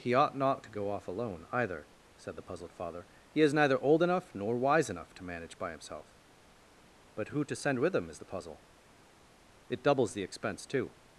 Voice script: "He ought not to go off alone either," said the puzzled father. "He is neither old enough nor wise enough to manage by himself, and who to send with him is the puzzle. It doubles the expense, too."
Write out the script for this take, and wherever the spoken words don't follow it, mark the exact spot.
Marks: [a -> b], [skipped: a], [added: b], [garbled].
"He ought not to go off alone either," said the puzzled father. "He is neither old enough nor wise enough to manage by himself, [and -> but] who to send with him is the puzzle. It doubles the expense, too."